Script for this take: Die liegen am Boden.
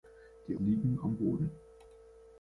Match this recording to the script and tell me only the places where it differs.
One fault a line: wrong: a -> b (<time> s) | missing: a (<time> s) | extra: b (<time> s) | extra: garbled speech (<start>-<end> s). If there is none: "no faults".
no faults